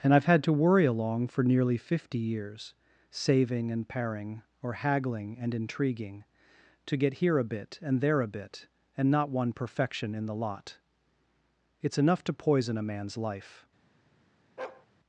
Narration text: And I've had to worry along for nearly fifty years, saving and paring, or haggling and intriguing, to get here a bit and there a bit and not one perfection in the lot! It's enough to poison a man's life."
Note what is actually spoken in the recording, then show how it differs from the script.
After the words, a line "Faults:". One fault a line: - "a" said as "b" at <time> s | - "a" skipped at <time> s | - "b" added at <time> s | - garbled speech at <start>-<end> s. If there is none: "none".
And I've had to worry along for nearly fifty years, saving and paring, or haggling and intriguing, to get here a bit and there a bit and not one perfection in the lot! It's enough to poison a man's life."
Faults:
none